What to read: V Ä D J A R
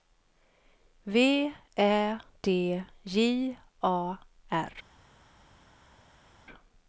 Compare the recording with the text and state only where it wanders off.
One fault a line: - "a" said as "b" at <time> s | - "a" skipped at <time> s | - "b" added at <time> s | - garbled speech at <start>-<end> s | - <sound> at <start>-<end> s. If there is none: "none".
none